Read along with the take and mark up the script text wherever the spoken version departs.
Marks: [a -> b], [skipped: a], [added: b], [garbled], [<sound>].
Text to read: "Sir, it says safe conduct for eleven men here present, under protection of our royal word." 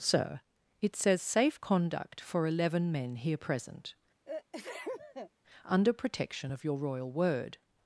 "Sir, it says safe conduct for eleven men here present, [sneeze] under protection of [our -> your] royal word."